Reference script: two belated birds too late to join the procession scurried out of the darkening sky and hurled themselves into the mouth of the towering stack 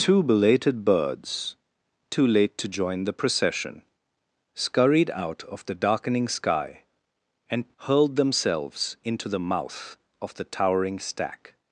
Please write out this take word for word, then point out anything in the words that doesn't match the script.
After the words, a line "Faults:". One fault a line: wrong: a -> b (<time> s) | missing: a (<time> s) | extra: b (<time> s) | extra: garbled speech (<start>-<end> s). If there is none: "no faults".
two belated birds too late to join the procession scurried out of the darkening sky and hurled themselves into the mouth of the towering stack
Faults:
no faults